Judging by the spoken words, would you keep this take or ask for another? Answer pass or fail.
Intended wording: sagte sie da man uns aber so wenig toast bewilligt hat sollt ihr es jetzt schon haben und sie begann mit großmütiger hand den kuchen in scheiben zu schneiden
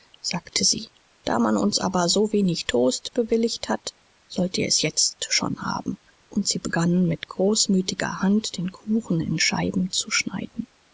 pass